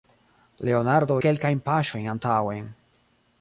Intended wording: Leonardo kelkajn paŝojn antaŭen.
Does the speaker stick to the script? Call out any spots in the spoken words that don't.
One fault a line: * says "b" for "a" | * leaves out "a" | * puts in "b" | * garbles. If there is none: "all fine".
all fine